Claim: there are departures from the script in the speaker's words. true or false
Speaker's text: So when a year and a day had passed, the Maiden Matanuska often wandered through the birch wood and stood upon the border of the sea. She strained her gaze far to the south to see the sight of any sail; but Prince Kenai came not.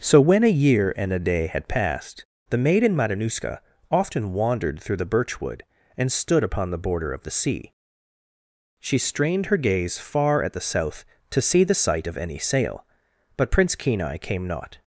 true